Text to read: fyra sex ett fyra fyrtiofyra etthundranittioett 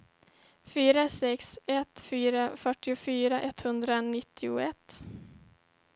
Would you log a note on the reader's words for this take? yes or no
no